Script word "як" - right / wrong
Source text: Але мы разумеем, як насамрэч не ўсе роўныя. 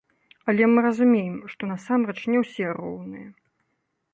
wrong